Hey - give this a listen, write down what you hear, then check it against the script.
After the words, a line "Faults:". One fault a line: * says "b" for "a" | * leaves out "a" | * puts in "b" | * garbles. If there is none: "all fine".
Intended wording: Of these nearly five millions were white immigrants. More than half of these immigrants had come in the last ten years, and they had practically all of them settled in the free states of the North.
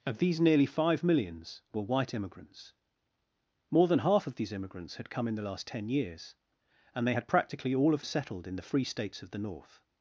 Of these nearly five millions were white immigrants. More than half of these immigrants had come in the last ten years, and they had practically all of settled in the free states of the North.
Faults:
* leaves out "them"